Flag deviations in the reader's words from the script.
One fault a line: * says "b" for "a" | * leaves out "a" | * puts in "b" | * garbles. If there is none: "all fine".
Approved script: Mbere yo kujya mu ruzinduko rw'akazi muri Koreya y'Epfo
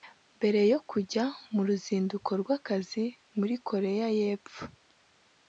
all fine